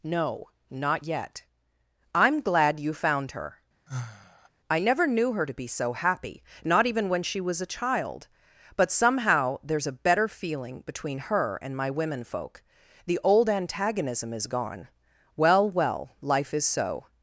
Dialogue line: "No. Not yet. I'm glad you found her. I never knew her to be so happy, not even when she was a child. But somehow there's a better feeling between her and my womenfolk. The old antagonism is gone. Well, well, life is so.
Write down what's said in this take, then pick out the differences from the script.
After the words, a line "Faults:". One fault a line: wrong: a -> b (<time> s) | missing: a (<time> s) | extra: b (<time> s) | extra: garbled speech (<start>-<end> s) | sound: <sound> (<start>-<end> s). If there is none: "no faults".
"No. Not yet. I'm glad you found her. I never knew her to be so happy, not even when she was a child. But somehow there's a better feeling between her and my womenfolk. The old antagonism is gone. Well, well, life is so.
Faults:
sound: sigh (3.9-4.5 s)